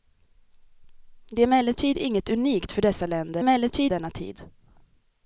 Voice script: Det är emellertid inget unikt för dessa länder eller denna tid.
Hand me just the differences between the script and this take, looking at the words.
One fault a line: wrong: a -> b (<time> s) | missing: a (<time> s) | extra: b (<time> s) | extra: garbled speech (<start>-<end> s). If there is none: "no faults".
wrong: eller -> emellertid (3.4 s)